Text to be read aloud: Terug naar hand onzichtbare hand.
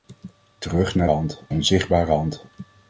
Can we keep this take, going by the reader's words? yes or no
yes